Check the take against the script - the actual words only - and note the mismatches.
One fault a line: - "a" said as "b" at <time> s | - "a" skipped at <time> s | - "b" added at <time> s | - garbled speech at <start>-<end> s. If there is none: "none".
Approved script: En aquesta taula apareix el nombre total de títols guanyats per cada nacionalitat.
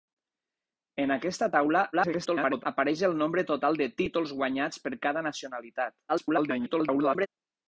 - garbled speech at 1.9-2.6 s
- garbled speech at 6.1-7.3 s